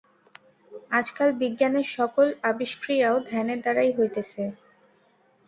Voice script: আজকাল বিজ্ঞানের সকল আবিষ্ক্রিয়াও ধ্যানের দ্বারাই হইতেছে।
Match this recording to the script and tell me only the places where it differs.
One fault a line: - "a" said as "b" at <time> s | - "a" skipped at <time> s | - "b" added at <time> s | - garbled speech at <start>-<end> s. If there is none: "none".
none